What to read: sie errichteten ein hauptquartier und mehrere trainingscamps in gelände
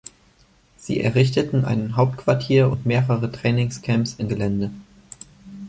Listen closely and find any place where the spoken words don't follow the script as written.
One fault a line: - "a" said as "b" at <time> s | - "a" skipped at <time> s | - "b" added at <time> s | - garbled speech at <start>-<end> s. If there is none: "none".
none